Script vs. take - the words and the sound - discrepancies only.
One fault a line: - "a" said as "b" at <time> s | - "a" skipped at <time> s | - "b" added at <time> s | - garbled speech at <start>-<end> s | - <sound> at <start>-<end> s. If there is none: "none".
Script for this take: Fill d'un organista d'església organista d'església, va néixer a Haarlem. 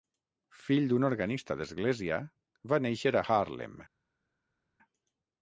- "organista d'església" skipped at 2.2 s